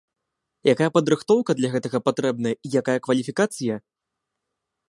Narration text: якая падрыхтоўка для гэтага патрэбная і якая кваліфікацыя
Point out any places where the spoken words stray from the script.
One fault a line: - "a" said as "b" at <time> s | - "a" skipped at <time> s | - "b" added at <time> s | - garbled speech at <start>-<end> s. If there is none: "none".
none